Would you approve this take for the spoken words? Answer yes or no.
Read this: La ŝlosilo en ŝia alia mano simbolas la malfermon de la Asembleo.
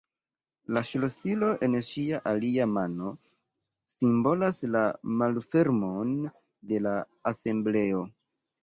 yes